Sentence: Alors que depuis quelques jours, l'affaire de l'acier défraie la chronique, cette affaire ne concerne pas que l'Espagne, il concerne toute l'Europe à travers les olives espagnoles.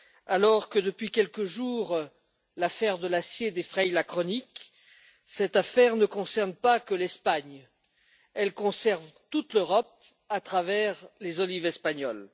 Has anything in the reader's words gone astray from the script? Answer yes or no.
yes